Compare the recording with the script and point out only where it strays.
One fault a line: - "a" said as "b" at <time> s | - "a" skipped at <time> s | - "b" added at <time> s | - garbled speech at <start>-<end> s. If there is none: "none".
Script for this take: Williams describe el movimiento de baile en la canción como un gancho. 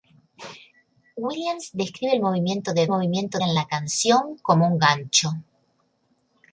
- "baile" said as "movimiento" at 2.9 s